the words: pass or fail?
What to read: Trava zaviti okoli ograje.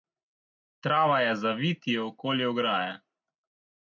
fail